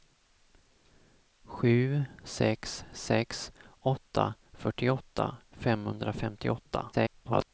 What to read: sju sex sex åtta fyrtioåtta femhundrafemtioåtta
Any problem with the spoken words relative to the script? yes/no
yes